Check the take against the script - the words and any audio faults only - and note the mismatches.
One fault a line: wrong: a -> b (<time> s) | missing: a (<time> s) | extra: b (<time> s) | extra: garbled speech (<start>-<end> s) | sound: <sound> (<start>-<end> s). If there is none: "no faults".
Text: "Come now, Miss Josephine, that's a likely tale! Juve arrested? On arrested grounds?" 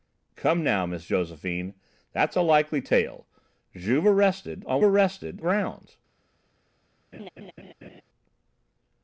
sound: laugh (7.1-8.0 s)